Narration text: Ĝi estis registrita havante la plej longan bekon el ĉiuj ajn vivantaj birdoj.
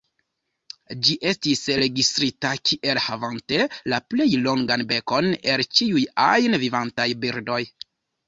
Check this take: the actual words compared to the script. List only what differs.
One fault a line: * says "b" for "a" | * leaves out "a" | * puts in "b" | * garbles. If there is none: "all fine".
* puts in "kiel"